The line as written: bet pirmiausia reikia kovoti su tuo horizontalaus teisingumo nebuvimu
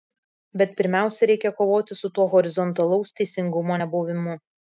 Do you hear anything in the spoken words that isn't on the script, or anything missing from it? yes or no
no